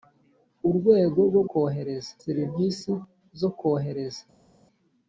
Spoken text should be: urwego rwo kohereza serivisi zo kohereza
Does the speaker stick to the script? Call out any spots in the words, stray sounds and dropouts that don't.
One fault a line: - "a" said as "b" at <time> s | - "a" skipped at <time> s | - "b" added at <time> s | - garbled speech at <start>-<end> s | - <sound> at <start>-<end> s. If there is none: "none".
none